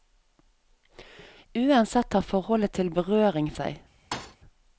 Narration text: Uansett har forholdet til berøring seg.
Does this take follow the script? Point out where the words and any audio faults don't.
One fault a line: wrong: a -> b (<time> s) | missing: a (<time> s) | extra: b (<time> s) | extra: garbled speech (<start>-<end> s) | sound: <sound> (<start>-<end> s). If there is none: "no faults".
sound: thud (4.1-4.4 s)